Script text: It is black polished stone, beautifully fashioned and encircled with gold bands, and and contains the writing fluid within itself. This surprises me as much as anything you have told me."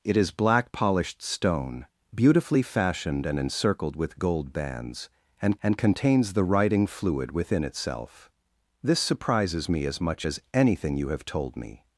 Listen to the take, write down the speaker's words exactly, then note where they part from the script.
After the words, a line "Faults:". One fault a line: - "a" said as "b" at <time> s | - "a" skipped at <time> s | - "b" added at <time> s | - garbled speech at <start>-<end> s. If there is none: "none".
It is black polished stone, beautifully fashioned and encircled with gold bands, and and contains the writing fluid within itself. This surprises me as much as anything you have told me."
Faults:
none